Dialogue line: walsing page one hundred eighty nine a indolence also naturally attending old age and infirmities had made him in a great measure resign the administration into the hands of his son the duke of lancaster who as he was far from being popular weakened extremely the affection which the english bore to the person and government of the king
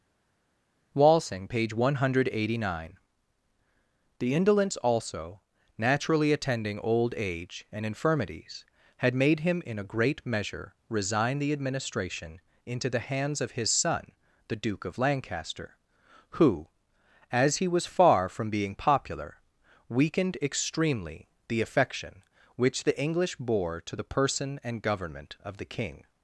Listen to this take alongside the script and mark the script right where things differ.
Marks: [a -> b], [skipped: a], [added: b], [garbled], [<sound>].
walsing page one hundred eighty nine [a -> the] indolence also naturally attending old age and infirmities had made him in a great measure resign the administration into the hands of his son the duke of lancaster who as he was far from being popular weakened extremely the affection which the english bore to the person and government of the king